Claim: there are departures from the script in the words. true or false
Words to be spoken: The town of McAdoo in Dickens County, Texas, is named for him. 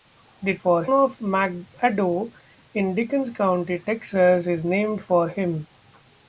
true